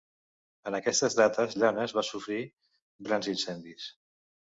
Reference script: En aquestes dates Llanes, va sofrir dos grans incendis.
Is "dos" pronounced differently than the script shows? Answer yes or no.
yes